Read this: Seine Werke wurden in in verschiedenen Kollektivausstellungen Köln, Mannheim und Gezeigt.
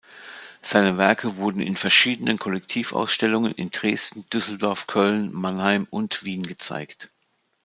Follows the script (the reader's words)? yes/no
no